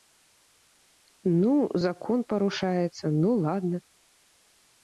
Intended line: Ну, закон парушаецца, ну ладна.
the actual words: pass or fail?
pass